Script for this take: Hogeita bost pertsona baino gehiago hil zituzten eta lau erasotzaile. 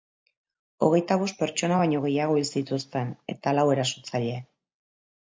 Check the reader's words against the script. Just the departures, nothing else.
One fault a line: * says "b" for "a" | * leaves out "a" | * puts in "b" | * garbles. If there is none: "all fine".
all fine